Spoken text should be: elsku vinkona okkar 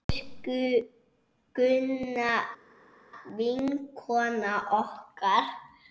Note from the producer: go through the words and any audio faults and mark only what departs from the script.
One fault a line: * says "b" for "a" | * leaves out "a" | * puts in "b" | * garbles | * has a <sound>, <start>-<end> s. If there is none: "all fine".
* puts in "gunna"